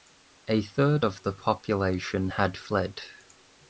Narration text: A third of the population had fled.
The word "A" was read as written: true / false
true